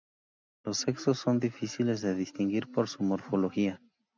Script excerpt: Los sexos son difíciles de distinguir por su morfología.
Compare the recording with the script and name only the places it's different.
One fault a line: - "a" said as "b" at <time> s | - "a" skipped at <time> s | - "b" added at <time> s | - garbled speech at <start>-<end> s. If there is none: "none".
none